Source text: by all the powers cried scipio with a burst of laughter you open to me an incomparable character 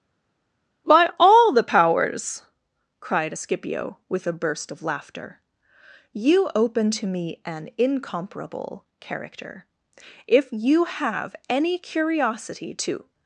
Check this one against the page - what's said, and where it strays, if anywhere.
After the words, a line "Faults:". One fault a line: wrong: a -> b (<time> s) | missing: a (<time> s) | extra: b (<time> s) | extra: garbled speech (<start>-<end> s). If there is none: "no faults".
by all the powers cried scipio with a burst of laughter you open to me an incomparable character if you have any curiosity to
Faults:
extra: if you have any curiosity to (10.3 s)